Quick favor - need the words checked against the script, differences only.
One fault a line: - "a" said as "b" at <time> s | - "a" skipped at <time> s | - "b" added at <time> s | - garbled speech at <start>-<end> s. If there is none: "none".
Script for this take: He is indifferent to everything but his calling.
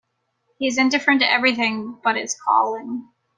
none